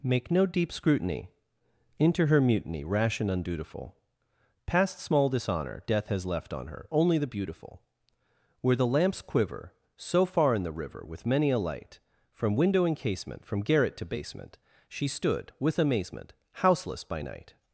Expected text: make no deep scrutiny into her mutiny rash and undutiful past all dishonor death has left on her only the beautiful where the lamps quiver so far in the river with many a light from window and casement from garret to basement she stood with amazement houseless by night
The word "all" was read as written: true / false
false